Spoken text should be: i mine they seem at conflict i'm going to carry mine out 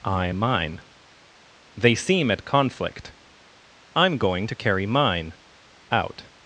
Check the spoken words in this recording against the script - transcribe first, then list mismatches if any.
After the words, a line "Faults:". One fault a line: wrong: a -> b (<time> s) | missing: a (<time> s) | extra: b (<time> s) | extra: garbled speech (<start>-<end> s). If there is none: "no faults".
i mine they seem at conflict i'm going to carry mine out
Faults:
no faults